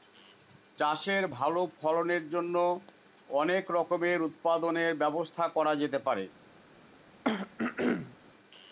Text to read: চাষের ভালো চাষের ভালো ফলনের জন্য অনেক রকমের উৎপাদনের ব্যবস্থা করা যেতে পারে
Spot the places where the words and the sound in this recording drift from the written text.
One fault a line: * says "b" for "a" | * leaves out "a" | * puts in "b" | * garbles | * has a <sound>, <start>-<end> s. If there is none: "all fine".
* leaves out "চাষের ভালো"
* has a throat clearing, 7.2-8.2 s